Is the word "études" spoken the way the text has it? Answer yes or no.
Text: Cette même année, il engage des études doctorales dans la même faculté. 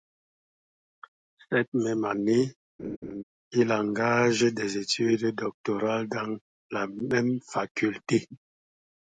yes